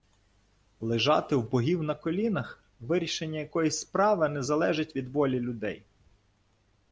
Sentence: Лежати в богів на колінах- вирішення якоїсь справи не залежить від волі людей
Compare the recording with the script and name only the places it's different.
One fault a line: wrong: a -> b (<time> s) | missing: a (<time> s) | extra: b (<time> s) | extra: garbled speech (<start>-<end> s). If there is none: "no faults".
no faults